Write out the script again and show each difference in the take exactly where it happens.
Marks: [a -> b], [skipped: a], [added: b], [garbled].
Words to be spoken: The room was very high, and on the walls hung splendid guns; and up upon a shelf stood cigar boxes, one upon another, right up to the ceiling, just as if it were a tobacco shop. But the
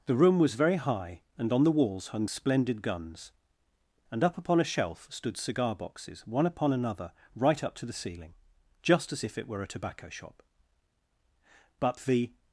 The room was very high, and on the walls hung splendid guns; and up upon a shelf stood cigar boxes, one upon another, right up to the ceiling, just as if it were a tobacco shop. But the